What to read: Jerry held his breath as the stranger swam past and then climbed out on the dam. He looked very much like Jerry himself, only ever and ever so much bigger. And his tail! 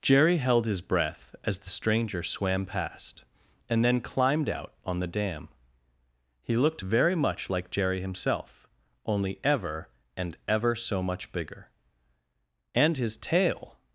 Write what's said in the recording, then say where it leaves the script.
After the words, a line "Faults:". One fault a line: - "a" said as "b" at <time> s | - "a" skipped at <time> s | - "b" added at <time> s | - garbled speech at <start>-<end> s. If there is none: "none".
Jerry held his breath as the stranger swam past and then climbed out on the dam. He looked very much like Jerry himself, only ever and ever so much bigger. And his tail!
Faults:
none